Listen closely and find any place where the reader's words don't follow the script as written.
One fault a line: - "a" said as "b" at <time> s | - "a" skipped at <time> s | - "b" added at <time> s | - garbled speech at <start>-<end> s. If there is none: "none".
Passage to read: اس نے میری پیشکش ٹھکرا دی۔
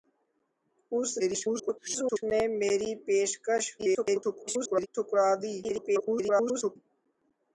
- garbled speech at 1.2-2.2 s
- garbled speech at 3.8-4.9 s
- garbled speech at 5.6-6.8 s